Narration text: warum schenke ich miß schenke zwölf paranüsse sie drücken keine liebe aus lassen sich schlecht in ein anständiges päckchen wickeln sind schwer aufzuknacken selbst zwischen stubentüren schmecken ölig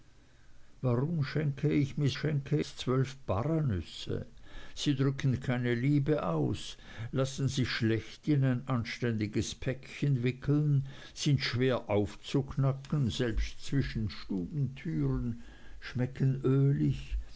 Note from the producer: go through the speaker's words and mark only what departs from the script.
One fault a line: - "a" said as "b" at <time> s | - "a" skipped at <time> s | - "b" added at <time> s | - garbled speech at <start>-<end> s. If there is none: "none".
none